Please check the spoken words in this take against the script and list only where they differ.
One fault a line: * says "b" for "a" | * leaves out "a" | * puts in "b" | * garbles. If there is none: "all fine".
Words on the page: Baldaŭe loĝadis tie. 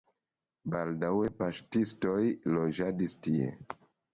* puts in "paŝtistoj"